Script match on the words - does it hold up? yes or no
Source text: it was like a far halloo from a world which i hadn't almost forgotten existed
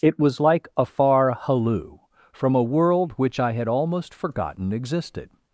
no